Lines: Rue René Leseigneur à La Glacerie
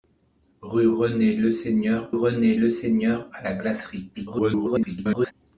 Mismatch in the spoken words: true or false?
true